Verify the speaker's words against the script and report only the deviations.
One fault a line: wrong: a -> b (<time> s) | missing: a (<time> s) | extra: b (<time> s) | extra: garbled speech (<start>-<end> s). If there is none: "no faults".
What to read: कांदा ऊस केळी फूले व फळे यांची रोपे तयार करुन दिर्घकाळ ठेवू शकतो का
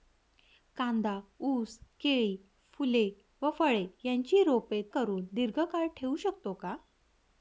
missing: तयार (4.8 s)